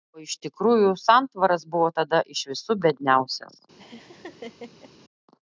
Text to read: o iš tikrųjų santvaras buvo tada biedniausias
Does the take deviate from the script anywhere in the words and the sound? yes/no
yes